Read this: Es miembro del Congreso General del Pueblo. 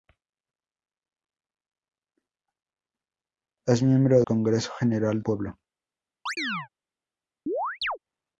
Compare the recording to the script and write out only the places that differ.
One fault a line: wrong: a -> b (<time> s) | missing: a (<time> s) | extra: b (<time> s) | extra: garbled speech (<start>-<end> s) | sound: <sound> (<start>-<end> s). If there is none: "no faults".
missing: del (4.2 s)
missing: del (5.2 s)
sound: chirp (6.3-6.7 s)
sound: chirp (7.5-8.0 s)